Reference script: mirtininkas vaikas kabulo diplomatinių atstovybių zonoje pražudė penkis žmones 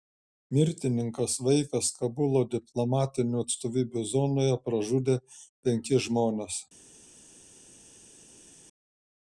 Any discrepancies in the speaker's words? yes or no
no